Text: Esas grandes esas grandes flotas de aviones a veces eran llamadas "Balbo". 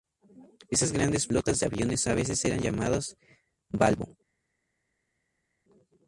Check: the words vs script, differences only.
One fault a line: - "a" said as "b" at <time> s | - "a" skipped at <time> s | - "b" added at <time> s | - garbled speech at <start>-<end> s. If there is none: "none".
- "esas grandes" skipped at 1.3 s